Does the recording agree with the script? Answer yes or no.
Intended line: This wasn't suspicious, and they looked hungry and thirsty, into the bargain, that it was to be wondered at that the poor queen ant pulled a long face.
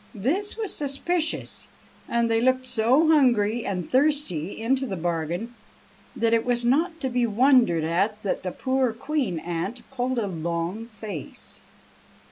no